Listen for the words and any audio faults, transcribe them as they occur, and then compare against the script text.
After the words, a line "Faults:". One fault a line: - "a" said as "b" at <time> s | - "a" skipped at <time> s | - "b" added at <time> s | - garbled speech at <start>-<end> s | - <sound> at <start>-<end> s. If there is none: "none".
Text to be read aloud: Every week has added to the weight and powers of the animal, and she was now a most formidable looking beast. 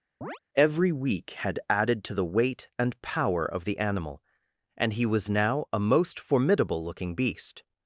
Every week had added to the weight and power of the animal, and he was now a most formidable looking beast.
Faults:
- chirp at 0.2-0.4 s
- "has" said as "had" at 1.3 s
- "powers" said as "power" at 3.0 s
- "she" said as "he" at 4.9 s